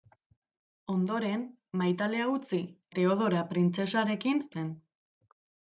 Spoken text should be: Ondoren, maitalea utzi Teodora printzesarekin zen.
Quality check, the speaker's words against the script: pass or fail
pass